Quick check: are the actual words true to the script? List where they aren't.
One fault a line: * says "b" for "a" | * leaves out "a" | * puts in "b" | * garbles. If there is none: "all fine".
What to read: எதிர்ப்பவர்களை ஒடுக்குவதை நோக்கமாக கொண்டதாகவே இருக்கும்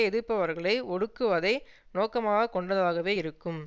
all fine